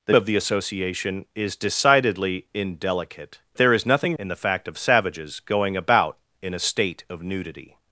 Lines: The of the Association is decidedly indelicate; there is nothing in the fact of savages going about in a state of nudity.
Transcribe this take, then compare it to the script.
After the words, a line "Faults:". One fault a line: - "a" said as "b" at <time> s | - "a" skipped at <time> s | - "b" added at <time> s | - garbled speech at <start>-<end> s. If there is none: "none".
The of the Association is decidedly indelicate; there is nothing in the fact of savages going about in a state of nudity.
Faults:
none